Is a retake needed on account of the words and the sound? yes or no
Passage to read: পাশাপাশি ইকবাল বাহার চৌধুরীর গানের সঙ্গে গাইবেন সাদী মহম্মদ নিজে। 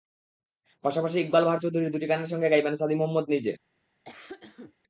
yes